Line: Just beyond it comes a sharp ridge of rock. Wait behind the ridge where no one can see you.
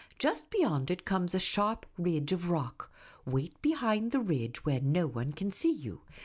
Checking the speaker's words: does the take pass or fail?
pass